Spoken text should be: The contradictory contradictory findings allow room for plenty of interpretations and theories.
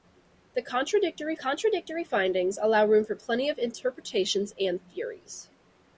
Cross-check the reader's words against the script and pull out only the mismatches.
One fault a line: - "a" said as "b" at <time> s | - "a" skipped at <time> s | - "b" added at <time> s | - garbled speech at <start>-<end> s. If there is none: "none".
none